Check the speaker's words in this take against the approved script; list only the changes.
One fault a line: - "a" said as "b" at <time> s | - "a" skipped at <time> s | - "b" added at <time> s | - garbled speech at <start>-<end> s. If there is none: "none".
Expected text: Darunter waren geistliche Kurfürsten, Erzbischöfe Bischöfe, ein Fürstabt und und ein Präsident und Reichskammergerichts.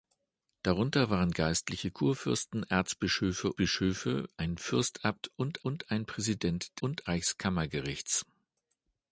none